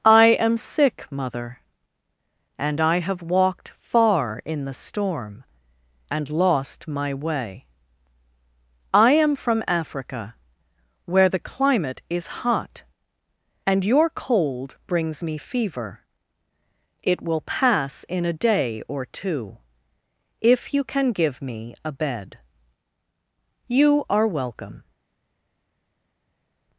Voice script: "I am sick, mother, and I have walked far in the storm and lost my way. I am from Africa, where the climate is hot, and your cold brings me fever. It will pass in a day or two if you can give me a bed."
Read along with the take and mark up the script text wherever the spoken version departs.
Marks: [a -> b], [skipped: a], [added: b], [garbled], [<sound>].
"I am sick, mother, and I have walked far in the storm and lost my way. I am from Africa, where the climate is hot, and your cold brings me fever. It will pass in a day or two if you can give me a bed." [added: You are welcome]